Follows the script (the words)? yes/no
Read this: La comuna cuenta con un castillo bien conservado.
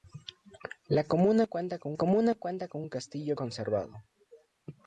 no